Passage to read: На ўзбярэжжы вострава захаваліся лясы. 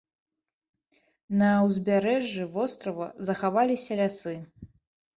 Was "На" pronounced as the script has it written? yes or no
yes